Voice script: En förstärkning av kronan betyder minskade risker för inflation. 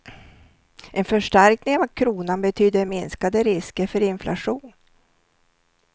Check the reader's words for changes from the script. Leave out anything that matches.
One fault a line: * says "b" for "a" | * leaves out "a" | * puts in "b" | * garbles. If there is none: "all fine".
all fine